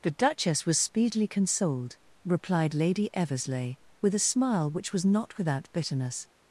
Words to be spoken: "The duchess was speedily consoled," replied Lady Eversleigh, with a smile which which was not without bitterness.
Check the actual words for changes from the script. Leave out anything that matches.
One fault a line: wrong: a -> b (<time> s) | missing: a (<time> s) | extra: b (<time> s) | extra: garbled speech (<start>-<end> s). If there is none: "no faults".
missing: which (4.9 s)